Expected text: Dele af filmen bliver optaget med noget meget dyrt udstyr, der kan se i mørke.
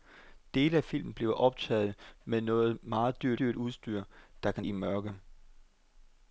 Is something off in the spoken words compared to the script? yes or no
yes